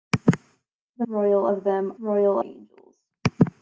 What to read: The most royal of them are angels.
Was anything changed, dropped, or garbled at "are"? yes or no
yes